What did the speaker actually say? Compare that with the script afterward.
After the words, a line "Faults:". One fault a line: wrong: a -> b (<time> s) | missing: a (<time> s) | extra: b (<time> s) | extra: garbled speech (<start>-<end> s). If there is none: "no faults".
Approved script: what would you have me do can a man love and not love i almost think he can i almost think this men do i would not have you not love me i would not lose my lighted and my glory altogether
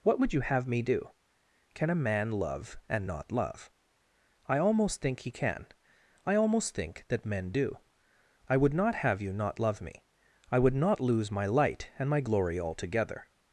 what would you have me do can a man love and not love i almost think he can i almost think that men do i would not have you not love me i would not lose my light and my glory altogether
Faults:
wrong: this -> that (7.1 s)
wrong: lighted -> light (11.5 s)